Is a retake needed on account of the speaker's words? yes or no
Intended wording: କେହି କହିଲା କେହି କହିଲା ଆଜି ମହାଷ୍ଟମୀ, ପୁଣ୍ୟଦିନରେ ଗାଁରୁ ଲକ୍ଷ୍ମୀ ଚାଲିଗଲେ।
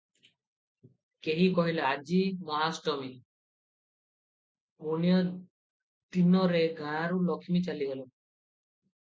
yes